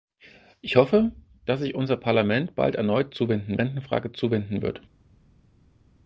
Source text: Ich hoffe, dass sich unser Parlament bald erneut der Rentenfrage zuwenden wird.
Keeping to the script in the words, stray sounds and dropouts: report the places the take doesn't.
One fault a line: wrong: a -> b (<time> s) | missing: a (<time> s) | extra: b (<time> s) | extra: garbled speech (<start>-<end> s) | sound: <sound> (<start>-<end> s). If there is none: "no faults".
wrong: der -> zuwenden (3.1 s)